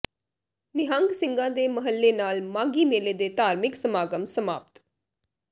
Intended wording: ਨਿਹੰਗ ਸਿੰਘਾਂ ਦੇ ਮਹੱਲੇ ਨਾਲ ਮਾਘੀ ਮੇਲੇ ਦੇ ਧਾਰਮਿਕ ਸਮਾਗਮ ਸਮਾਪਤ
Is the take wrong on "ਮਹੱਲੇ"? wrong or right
right